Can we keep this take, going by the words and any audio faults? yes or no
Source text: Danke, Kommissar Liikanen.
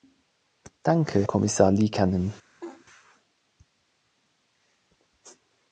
no